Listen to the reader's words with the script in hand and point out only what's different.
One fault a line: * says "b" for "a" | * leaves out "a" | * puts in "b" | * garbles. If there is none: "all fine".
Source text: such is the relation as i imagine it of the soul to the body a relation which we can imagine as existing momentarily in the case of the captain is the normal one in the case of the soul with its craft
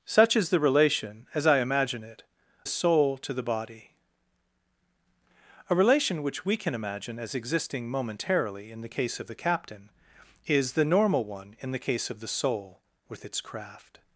* leaves out "of the"